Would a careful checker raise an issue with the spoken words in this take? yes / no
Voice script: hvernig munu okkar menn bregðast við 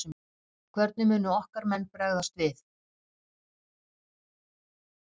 no